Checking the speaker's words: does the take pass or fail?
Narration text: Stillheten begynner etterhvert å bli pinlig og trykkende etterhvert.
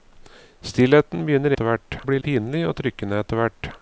pass